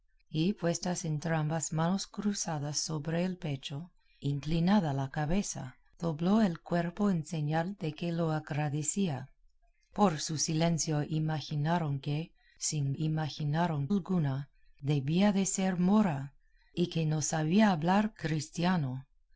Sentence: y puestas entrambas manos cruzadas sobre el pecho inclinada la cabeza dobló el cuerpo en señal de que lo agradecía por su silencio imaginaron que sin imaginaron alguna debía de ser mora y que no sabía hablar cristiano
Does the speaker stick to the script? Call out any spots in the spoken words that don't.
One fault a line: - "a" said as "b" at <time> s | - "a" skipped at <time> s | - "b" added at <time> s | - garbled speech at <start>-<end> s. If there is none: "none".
none